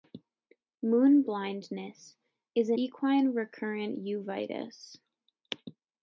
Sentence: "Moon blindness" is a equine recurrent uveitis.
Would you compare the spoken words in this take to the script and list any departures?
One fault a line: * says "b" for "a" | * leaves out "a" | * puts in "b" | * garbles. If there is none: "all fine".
all fine